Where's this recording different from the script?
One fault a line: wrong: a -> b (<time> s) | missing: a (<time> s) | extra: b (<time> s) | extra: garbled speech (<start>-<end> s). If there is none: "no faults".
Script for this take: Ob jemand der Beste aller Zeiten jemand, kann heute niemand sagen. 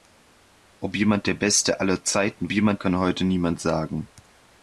no faults